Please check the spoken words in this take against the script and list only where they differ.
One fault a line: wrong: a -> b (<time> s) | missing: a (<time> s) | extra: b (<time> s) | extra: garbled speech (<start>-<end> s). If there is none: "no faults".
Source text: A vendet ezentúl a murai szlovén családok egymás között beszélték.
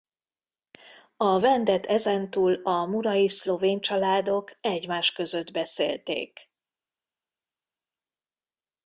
no faults